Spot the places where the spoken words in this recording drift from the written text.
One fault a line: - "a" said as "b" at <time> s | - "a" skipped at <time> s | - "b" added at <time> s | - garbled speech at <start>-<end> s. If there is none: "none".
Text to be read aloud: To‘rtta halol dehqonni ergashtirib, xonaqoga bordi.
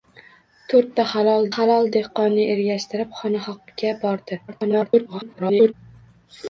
- "halol" added at 1.5 s
- garbled speech at 4.5-5.7 s